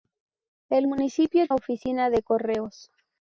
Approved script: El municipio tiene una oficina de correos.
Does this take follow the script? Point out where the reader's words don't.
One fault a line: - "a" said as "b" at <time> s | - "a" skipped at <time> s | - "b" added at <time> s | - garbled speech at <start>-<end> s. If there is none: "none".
- "tiene una" skipped at 1.5 s